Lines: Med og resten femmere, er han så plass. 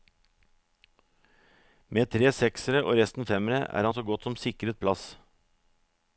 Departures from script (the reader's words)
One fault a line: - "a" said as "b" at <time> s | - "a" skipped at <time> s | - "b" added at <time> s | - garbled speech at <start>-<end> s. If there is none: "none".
- "tre seksere" added at 2.1 s
- "godt som sikret" added at 4.0 s